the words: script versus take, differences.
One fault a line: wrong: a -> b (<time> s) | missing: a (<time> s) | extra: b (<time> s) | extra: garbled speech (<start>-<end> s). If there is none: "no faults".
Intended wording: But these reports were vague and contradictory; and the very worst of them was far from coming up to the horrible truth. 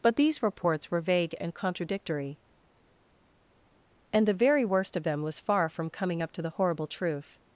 no faults